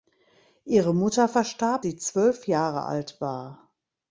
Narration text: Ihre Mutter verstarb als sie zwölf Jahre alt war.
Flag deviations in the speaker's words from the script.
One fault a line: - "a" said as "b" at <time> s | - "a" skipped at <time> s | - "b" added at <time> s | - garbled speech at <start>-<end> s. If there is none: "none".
- "als" skipped at 1.9 s